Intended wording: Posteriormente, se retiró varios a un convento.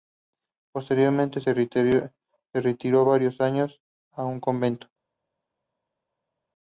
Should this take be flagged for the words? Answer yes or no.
yes